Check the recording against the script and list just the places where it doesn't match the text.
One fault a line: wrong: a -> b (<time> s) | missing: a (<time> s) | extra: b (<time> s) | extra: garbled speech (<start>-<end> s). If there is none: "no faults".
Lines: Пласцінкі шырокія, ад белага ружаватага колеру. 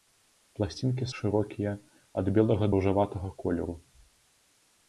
no faults